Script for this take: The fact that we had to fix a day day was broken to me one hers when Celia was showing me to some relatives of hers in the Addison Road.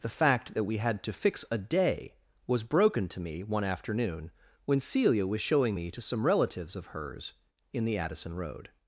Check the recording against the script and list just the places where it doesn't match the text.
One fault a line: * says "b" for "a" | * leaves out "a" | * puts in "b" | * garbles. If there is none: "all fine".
* leaves out "day"
* says "afternoon" for "hers"